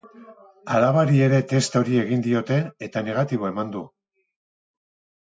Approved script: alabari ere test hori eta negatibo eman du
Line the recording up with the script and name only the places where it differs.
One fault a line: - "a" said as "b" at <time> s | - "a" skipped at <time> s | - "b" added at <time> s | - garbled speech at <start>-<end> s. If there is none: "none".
- "egin diote" added at 2.0 s